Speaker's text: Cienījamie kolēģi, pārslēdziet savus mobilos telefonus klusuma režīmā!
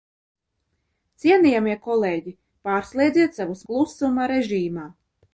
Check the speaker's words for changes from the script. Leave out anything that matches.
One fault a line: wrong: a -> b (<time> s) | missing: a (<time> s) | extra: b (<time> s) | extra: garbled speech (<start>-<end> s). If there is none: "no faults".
missing: mobilos telefonus (3.6 s)